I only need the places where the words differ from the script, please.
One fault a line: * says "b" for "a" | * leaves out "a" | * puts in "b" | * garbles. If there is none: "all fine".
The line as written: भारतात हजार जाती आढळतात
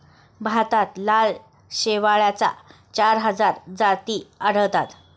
* puts in "लाल शेवाळाच्या चार"